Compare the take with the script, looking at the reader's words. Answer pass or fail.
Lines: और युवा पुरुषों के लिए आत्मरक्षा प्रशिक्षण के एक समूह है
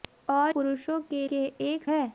fail